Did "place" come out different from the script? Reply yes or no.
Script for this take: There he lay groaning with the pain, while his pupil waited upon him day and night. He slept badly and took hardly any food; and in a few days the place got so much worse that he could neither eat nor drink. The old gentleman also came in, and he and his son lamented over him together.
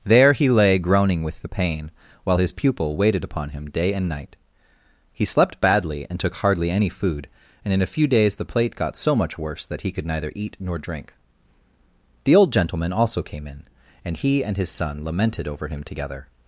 yes